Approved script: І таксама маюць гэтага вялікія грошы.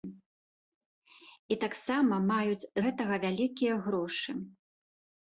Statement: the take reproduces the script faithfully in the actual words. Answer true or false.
true